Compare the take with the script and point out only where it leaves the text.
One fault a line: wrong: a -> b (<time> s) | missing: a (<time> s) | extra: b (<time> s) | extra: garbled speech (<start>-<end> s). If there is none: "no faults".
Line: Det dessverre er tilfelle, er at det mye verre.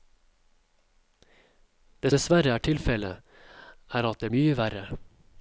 no faults